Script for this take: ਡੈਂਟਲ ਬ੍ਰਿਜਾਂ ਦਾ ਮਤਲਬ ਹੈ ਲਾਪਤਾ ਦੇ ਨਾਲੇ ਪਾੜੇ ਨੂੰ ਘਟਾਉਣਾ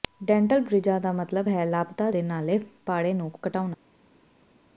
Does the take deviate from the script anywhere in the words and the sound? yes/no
no